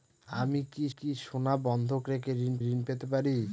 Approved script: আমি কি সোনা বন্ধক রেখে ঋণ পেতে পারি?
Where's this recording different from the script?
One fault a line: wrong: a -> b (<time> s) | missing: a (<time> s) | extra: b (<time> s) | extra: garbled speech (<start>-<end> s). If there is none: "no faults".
extra: কি (1.0 s)
extra: ঋণ (2.7 s)